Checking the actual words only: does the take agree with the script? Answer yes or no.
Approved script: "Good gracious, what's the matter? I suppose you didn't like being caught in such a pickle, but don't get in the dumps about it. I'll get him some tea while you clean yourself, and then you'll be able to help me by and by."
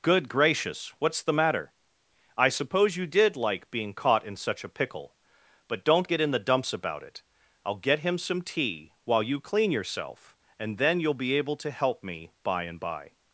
no